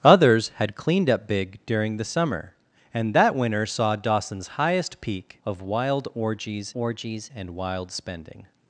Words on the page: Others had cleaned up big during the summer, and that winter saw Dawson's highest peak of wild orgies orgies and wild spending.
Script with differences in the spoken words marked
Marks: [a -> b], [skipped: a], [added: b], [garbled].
Others had cleaned up big during the summer, and that winter saw Dawson's highest peak of wild orgies orgies and wild spending.